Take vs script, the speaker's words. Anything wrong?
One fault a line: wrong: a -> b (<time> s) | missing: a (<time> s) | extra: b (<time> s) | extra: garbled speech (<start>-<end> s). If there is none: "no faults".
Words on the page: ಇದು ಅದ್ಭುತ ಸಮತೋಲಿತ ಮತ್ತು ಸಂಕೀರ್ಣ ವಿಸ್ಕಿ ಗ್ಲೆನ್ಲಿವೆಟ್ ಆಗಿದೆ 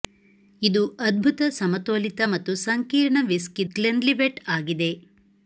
no faults